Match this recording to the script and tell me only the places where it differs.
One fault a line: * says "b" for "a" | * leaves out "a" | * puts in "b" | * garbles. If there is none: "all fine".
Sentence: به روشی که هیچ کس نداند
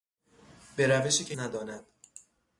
* leaves out "هیچ کس"